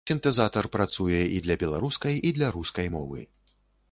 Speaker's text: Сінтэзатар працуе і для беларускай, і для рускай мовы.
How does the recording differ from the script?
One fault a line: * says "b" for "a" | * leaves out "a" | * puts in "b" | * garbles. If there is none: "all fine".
all fine